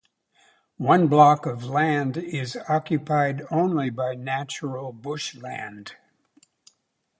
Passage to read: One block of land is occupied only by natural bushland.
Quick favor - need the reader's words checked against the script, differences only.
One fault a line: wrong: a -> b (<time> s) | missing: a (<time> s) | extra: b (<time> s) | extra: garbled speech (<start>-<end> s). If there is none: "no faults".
no faults